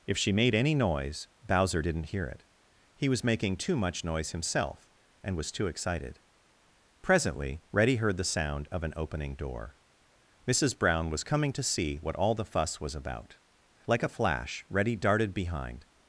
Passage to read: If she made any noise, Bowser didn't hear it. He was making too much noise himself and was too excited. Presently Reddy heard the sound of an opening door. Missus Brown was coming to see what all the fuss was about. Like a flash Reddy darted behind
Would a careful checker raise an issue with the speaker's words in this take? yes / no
no